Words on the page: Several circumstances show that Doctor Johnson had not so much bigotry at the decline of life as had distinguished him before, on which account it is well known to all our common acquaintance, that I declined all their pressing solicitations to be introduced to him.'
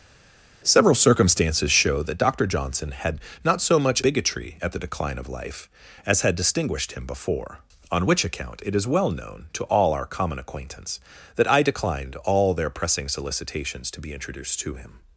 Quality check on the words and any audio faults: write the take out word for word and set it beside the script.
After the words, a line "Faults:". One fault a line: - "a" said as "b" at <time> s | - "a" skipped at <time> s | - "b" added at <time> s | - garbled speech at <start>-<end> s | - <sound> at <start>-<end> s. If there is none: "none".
Several circumstances show that Doctor Johnson had not so much bigotry at the decline of life as had distinguished him before, on which account it is well known to all our common acquaintance, that I declined all their pressing solicitations to be introduced to him.'
Faults:
none